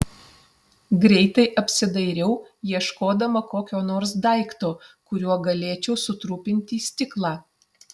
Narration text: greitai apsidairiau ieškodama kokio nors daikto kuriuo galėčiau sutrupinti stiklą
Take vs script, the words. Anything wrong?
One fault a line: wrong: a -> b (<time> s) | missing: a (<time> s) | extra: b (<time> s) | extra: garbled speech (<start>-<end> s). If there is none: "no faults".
no faults